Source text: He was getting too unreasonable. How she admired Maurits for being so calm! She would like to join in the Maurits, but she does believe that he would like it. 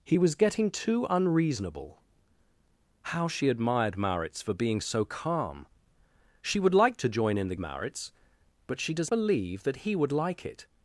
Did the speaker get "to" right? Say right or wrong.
right